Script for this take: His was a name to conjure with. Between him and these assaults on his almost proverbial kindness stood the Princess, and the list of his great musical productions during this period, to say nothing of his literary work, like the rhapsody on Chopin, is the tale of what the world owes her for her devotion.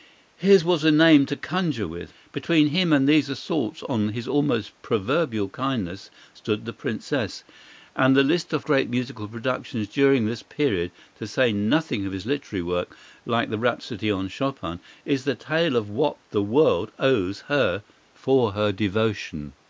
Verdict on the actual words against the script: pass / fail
fail